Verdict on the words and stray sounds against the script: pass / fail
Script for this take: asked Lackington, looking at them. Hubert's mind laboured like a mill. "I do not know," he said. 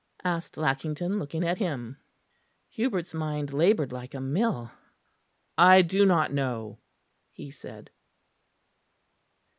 fail